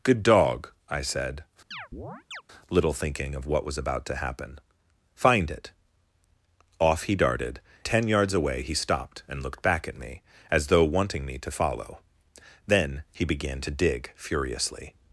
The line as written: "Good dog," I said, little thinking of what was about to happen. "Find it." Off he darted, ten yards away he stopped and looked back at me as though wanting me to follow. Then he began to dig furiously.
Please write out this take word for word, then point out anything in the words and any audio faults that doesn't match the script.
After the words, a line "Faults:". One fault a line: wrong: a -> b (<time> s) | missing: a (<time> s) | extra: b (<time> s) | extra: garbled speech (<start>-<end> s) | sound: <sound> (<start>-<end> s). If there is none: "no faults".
"Good dog," I said, little thinking of what was about to happen. "Find it." Off he darted, ten yards away he stopped and looked back at me as though wanting me to follow. Then he began to dig furiously.
Faults:
sound: chirp (1.7-2.4 s)